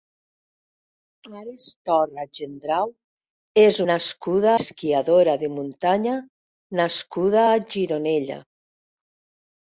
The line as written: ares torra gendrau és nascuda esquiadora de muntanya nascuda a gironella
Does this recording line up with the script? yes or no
yes